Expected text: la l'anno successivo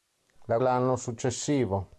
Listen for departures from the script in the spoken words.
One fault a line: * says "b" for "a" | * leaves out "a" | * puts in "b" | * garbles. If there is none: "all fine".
all fine